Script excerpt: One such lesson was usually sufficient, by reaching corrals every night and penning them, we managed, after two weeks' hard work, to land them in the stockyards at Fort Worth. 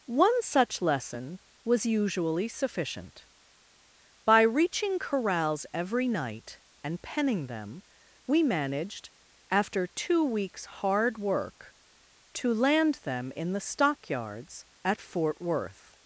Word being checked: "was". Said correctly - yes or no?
yes